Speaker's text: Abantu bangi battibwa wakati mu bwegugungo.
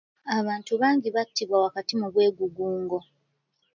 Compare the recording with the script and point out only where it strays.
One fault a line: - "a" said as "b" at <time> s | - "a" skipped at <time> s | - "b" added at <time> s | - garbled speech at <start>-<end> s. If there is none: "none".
none